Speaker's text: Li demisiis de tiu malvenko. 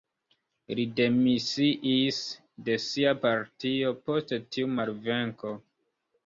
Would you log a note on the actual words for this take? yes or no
yes